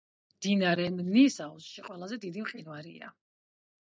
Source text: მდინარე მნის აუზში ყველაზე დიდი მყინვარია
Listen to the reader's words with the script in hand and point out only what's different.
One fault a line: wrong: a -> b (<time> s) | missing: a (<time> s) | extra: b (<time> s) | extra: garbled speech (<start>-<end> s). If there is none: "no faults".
no faults